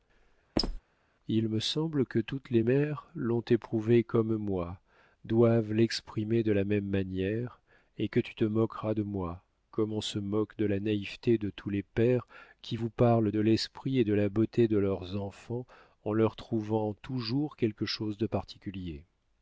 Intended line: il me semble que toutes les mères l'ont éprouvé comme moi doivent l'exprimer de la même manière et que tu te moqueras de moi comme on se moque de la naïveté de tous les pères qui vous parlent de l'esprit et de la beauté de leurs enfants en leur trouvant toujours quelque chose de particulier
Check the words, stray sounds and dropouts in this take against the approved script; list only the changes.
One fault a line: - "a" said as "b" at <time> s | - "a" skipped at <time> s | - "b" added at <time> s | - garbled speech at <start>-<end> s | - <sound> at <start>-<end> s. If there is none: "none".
- squeak at 0.6-0.8 s